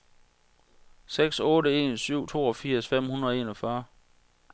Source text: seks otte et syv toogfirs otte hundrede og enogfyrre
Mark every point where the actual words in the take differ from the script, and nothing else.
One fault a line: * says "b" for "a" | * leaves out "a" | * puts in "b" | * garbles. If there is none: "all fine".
* says "en" for "et"
* says "fem" for "otte"